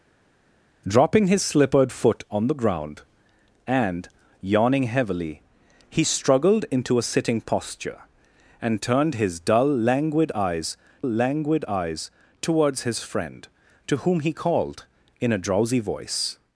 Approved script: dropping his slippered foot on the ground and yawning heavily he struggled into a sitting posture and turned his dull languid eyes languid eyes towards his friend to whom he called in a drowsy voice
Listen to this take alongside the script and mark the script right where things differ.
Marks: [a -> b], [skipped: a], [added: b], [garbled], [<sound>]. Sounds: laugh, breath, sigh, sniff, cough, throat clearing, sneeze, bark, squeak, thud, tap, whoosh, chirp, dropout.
dropping his slippered foot on the ground and yawning heavily he struggled into a sitting posture and turned his dull languid eyes languid eyes towards his friend to whom he called in a drowsy voice